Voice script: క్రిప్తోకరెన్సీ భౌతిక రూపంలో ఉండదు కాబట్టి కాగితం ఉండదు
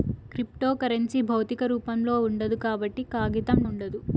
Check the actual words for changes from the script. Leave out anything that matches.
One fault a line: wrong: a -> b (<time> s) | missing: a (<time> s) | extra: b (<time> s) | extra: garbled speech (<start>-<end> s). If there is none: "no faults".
no faults